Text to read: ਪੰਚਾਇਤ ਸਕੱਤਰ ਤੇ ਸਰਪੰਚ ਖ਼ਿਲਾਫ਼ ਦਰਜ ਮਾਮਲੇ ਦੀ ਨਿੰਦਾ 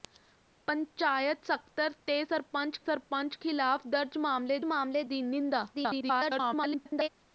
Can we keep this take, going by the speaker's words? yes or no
no